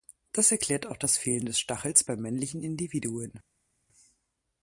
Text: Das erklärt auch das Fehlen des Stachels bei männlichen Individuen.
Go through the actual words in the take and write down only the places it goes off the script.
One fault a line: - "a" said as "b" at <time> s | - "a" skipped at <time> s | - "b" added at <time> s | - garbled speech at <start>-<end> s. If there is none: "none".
none